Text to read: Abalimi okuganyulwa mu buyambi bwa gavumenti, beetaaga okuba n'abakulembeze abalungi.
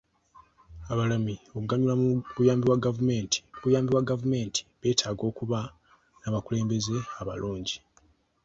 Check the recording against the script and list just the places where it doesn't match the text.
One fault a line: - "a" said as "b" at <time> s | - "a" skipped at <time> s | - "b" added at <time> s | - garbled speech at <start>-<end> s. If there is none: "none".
- "buyambi bwa gavumenti" added at 3.6 s